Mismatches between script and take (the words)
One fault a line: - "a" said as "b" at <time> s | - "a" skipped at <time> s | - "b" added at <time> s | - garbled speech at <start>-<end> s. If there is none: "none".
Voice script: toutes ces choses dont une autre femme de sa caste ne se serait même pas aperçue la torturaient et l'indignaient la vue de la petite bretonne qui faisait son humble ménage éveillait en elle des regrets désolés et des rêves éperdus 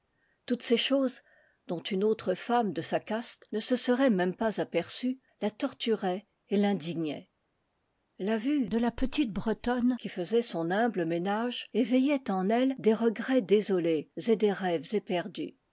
none